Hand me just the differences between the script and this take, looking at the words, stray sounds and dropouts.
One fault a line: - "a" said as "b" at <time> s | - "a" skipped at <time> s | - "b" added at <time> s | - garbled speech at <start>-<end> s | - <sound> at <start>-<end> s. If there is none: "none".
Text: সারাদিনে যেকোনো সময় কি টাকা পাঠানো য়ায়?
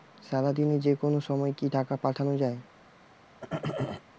- throat clearing at 3.4-4.0 s